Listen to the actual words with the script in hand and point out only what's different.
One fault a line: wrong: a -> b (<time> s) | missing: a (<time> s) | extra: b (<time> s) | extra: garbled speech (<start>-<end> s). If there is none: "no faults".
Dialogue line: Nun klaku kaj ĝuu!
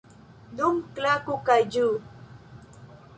no faults